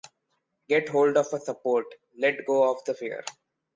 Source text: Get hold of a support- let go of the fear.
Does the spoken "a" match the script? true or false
true